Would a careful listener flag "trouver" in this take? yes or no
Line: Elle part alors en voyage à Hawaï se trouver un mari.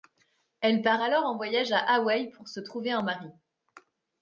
no